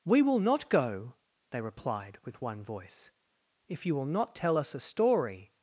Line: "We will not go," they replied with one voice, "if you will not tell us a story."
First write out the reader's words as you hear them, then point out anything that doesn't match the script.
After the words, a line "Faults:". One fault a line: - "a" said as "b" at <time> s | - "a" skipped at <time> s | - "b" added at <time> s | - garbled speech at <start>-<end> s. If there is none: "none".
"We will not go," they replied with one voice, "if you will not tell us a story."
Faults:
none